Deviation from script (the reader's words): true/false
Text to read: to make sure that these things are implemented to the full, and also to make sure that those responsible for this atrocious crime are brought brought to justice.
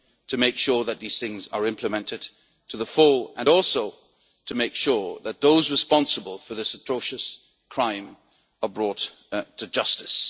true